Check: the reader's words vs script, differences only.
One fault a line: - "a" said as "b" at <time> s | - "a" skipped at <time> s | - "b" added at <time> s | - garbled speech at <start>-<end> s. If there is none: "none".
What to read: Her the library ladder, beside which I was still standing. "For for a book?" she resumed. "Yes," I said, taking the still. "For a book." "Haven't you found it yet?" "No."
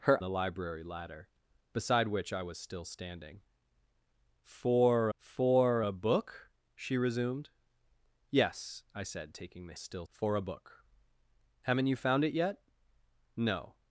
none